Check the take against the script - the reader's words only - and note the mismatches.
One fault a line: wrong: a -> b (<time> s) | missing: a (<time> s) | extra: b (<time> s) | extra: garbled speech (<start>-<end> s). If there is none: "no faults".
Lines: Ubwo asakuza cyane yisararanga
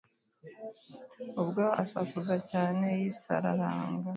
no faults